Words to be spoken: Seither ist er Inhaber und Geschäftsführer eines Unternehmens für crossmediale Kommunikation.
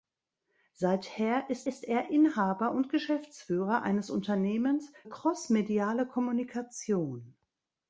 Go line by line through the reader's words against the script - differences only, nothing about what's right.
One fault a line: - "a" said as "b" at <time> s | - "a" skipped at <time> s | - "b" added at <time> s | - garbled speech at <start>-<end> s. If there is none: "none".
- "ist" added at 1.7 s
- "für" skipped at 4.9 s